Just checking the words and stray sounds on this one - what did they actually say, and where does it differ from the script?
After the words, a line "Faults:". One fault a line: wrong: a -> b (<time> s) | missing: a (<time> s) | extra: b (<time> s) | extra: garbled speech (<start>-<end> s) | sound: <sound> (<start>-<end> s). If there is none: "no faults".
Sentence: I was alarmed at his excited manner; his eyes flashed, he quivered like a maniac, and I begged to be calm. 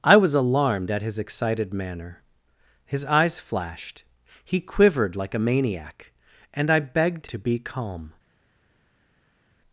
I was alarmed at his excited manner; his eyes flashed, he quivered like a maniac, and I begged to be calm.
Faults:
no faults